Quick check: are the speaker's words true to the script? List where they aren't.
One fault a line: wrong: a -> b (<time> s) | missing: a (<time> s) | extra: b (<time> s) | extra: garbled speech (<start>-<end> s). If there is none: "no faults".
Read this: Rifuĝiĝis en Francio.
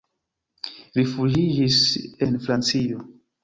no faults